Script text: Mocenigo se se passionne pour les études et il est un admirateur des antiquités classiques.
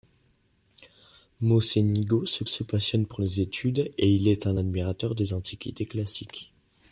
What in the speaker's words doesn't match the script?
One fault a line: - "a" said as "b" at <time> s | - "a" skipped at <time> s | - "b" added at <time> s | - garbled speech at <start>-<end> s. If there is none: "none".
none